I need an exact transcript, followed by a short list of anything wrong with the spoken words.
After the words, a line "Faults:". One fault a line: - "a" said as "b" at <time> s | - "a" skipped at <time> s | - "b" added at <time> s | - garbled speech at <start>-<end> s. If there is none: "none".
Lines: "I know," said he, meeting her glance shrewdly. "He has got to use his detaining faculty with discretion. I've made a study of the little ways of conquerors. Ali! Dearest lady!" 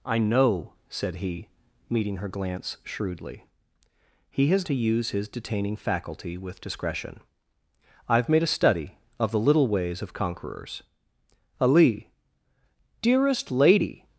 "I know," said he, meeting her glance shrewdly. "He has to use his detaining faculty with discretion. I've made a study of the little ways of conquerors. Ali! Dearest lady!"
Faults:
- "got" skipped at 4.6 s